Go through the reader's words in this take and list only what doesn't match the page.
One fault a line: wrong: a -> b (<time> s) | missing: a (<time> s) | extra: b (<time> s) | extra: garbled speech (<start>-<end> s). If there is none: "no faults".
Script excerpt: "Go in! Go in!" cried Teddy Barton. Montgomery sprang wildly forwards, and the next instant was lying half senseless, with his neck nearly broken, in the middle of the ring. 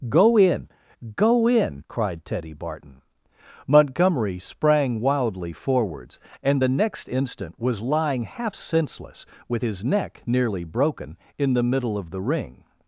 no faults